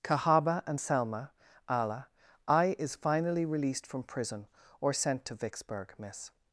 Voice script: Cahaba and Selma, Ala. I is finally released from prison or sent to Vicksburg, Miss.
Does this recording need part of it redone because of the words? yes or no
no